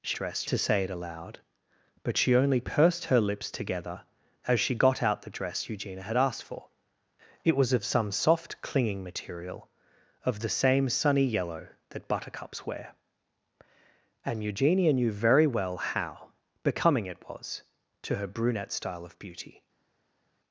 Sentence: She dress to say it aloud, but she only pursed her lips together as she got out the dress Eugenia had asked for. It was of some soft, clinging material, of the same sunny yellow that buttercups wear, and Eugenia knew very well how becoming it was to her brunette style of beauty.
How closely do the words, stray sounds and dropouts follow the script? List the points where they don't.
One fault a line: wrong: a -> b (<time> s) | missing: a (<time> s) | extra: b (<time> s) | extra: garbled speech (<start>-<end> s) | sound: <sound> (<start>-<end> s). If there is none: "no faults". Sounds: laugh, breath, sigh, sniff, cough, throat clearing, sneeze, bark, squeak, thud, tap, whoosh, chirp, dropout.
no faults